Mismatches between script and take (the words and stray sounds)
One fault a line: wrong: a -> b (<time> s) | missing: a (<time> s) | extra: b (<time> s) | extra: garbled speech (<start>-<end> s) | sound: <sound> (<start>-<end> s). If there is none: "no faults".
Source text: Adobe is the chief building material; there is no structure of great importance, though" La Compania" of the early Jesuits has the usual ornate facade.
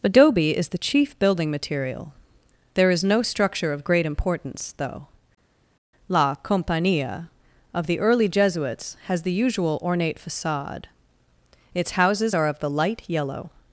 extra: Its houses are of the light yellow (11.7 s)